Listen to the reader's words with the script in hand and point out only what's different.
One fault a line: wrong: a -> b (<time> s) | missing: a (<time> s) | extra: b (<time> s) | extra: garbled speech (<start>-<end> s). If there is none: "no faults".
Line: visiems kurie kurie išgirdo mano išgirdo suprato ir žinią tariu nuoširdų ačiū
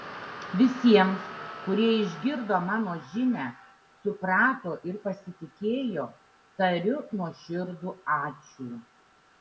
missing: kurie (1.9 s)
wrong: išgirdo -> žinią (3.1 s)
wrong: žinią -> pasitikėjo (5.1 s)